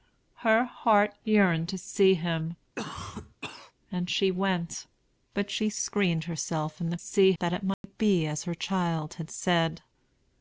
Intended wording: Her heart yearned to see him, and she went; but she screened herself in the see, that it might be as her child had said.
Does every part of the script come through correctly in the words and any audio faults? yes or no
no